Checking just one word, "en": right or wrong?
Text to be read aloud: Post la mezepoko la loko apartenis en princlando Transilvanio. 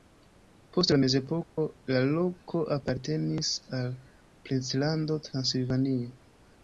wrong